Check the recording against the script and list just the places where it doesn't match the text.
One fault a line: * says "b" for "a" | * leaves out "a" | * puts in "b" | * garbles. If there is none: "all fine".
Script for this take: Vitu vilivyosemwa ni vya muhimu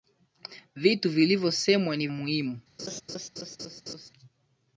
* leaves out "vya"